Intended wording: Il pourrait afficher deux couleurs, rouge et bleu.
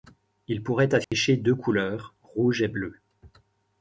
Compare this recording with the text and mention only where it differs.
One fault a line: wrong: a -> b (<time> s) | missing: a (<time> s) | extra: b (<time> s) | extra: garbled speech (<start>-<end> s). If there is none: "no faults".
no faults